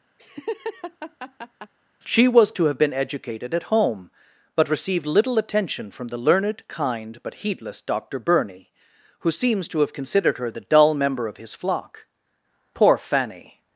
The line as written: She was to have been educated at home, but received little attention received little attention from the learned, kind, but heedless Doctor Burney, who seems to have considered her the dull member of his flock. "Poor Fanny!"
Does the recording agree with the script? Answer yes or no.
no